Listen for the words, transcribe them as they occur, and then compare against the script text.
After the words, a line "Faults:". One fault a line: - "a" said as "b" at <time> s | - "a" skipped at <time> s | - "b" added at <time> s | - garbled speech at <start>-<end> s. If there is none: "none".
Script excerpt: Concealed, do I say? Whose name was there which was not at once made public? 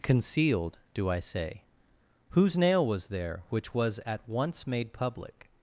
Concealed, do I say? Whose nail was there which was at once made public?
Faults:
- "name" said as "nail" at 2.6 s
- "not" skipped at 4.0 s